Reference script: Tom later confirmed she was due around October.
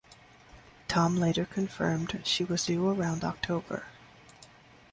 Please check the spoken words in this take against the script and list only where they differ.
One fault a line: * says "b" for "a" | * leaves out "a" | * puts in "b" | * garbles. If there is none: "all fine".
all fine